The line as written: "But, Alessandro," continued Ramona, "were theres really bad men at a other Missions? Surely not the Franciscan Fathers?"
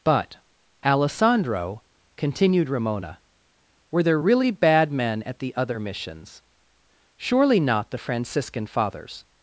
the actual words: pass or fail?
fail